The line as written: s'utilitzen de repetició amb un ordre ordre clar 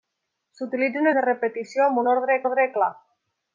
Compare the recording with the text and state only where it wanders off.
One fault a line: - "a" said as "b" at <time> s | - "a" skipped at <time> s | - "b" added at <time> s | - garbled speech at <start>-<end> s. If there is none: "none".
none